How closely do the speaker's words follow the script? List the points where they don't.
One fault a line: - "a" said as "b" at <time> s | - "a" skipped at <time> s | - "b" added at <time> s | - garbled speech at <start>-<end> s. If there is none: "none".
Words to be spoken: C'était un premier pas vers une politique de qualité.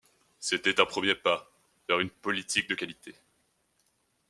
none